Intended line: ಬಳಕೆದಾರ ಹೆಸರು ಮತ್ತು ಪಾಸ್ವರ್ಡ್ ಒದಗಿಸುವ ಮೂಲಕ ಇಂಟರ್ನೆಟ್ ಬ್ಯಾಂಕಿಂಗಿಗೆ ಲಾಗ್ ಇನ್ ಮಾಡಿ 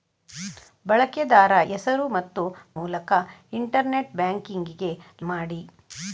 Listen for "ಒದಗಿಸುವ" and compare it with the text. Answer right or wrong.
wrong